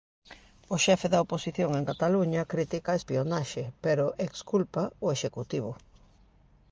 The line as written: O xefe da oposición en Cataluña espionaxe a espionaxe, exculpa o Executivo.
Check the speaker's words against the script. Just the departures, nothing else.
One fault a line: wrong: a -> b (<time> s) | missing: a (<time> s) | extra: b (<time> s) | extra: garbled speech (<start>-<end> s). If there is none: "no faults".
wrong: espionaxe -> critica (2.5 s)
extra: pero (3.8 s)